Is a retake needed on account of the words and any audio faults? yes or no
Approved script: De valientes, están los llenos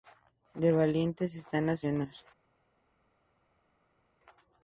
no